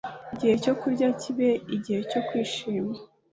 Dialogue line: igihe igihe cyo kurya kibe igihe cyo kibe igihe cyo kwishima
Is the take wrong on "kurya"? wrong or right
right